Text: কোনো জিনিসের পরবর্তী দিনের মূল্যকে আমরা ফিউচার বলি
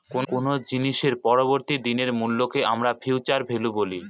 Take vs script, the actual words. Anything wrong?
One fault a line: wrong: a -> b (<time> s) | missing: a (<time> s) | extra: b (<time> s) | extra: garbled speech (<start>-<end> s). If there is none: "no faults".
extra: ভ্যালু (3.5 s)